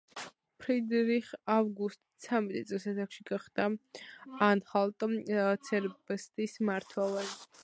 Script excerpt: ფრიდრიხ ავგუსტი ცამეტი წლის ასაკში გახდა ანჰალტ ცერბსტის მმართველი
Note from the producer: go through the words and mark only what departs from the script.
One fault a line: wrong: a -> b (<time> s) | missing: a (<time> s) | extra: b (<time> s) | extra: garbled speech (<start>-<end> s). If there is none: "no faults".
no faults